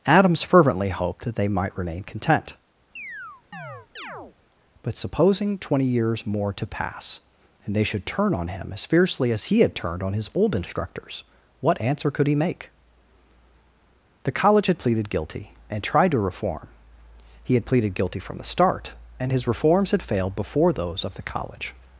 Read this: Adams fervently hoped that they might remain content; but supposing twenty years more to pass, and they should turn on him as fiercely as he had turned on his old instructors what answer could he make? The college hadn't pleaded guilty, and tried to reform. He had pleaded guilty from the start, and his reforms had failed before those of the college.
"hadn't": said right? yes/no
no